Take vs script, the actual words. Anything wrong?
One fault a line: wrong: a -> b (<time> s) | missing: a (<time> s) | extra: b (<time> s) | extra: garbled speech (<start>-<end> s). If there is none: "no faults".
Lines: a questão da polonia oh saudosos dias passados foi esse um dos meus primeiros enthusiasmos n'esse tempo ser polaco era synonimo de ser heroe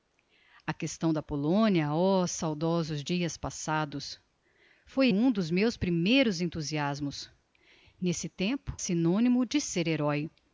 missing: esse (5.1 s)
missing: ser polaco era (8.8 s)